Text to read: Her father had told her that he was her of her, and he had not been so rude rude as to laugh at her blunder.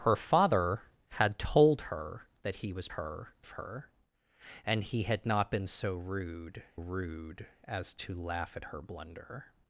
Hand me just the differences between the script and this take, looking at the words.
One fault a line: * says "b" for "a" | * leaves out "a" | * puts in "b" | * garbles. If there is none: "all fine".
all fine